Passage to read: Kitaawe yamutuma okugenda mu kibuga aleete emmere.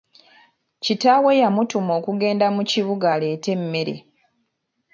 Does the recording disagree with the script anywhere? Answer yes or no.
no